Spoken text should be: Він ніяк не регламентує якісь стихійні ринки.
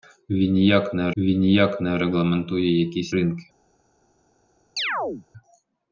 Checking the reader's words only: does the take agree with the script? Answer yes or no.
no